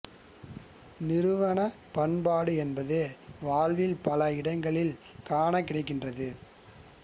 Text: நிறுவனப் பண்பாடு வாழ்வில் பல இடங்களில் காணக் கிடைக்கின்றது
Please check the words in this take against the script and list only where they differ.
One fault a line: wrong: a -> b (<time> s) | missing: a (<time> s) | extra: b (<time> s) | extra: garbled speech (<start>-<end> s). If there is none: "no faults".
extra: என்பது (2.5 s)